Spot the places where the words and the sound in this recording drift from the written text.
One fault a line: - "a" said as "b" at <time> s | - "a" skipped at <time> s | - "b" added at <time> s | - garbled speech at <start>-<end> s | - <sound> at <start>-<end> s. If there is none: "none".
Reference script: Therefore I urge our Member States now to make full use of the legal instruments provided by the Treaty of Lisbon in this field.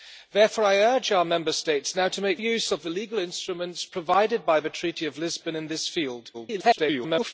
- "full" skipped at 2.4 s
- garbled speech at 6.3-7.3 s